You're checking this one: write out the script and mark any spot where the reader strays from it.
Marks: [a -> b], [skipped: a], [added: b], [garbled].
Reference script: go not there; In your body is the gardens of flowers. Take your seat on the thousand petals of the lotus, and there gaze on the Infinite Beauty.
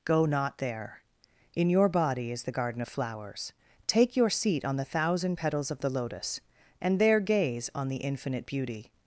go not there; In your body is the [gardens -> garden] of flowers. Take your seat on the thousand petals of the lotus, and there gaze on the Infinite Beauty.